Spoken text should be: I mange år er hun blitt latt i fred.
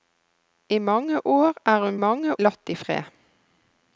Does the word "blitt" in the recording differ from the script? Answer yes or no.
yes